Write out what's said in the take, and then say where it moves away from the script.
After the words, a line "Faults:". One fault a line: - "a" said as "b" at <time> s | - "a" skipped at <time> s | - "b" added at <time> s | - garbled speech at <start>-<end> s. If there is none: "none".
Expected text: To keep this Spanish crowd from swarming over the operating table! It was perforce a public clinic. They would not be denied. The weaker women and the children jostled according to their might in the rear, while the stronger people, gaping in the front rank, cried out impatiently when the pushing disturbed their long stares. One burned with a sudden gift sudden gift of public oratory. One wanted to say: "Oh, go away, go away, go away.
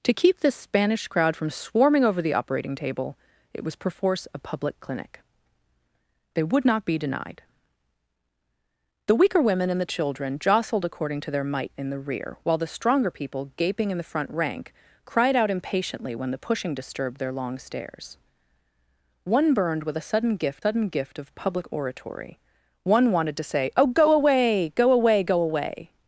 To keep this Spanish crowd from swarming over the operating table! It was perforce a public clinic. They would not be denied. The weaker women and the children jostled according to their might in the rear, while the stronger people, gaping in the front rank, cried out impatiently when the pushing disturbed their long stares. One burned with a sudden gift sudden gift of public oratory. One wanted to say: "Oh, go away, go away, go away.
Faults:
none